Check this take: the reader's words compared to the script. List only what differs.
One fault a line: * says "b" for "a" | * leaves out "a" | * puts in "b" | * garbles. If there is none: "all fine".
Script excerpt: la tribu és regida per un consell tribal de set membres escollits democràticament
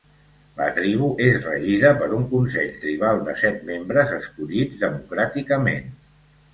all fine